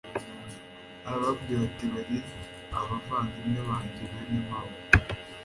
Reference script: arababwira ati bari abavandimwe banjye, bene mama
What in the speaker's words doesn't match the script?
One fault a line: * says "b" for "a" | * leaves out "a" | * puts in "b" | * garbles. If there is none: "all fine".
all fine